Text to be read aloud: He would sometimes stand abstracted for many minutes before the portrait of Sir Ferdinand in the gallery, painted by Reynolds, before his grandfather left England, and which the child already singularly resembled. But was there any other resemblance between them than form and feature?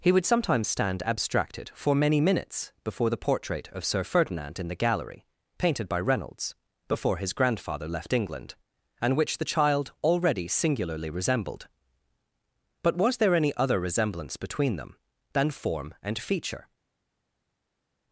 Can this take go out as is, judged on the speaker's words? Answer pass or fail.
pass